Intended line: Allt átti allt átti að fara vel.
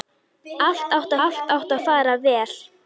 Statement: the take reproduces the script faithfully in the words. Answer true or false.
true